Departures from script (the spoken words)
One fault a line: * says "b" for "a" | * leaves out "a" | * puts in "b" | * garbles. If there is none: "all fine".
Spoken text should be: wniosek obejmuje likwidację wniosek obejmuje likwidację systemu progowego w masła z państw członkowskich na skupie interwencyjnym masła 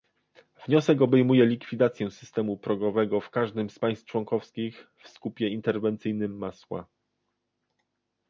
* leaves out "wniosek obejmuje likwidację"
* says "każdym" for "masła"
* says "w" for "na"